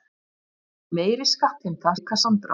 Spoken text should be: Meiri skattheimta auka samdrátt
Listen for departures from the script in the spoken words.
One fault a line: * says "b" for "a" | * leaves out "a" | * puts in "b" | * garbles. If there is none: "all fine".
all fine